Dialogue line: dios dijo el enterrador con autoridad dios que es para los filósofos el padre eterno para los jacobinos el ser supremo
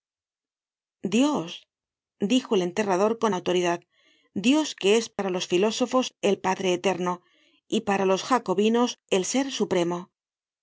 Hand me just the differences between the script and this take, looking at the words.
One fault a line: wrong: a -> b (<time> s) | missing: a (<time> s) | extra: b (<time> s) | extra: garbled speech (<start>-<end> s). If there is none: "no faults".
extra: y (7.7 s)